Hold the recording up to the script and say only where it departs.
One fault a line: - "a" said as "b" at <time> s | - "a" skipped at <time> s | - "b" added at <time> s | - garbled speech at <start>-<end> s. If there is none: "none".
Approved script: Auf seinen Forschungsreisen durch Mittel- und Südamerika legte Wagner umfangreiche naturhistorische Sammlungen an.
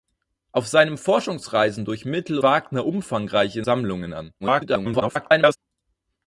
- "und Südamerika legte" skipped at 2.4 s
- "naturhistorische" skipped at 3.6 s
- garbled speech at 4.4-5.6 s